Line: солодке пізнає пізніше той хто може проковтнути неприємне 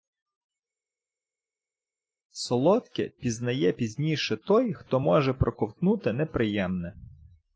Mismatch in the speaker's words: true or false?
false